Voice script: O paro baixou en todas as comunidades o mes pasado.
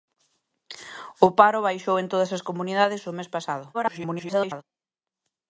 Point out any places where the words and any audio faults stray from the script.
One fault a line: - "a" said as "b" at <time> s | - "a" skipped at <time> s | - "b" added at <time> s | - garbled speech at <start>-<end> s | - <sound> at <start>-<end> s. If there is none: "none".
- garbled speech at 3.7-4.6 s